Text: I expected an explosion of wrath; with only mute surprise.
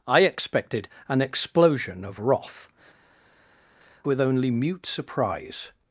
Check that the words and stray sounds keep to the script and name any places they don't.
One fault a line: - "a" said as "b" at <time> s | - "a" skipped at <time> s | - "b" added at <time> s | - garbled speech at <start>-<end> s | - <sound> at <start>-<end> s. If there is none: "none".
none